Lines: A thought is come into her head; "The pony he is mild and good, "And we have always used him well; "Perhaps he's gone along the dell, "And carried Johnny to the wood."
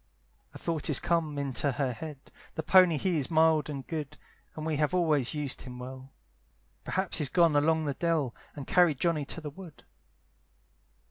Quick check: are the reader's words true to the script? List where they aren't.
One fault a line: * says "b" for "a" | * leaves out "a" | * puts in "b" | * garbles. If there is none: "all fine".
all fine